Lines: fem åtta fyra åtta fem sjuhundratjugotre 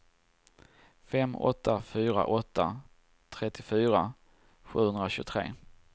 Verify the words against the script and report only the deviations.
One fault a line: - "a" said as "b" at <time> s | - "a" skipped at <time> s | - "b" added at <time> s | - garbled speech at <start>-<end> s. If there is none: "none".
- "fem" said as "trettiofyra" at 3.3 s